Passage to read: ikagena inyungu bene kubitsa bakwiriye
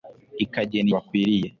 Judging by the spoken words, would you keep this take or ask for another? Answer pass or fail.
fail